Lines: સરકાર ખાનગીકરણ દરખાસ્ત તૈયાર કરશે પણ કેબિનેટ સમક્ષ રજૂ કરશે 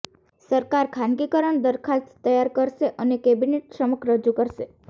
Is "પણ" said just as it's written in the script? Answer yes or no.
no